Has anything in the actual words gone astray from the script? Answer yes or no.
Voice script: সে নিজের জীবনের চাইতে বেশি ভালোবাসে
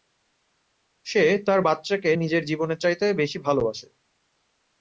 yes